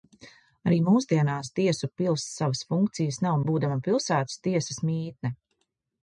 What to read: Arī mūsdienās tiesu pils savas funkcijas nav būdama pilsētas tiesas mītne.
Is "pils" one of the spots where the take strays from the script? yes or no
no